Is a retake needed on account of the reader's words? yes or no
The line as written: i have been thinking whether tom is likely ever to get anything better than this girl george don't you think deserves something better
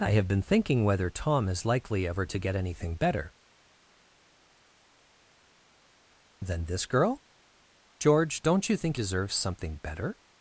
no